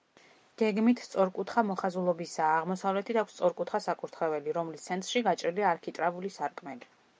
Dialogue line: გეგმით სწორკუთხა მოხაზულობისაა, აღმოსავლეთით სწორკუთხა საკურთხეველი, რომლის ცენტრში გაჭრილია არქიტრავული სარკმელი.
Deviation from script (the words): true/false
true